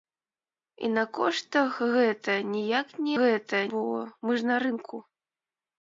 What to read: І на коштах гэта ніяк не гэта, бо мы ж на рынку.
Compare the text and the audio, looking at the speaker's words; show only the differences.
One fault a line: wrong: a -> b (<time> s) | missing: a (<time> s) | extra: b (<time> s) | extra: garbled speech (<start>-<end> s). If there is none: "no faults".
no faults